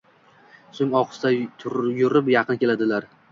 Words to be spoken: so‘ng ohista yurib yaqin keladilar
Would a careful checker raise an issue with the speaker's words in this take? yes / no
no